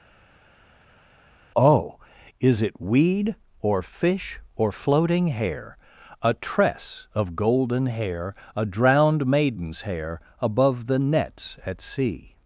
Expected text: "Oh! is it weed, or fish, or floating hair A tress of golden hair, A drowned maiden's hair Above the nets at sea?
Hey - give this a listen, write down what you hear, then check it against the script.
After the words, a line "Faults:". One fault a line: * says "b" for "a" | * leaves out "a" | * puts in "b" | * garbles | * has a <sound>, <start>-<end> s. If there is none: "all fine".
"Oh! is it weed, or fish, or floating hair A tress of golden hair, A drowned maiden's hair Above the nets at sea?
Faults:
all fine